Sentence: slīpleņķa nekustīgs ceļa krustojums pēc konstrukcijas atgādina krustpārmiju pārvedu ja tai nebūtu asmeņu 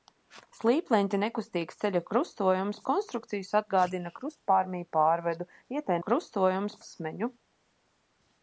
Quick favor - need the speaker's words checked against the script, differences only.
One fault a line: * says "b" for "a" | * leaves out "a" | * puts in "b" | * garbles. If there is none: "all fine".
* leaves out "pēc"
* says "krustojums" for "nebūtu"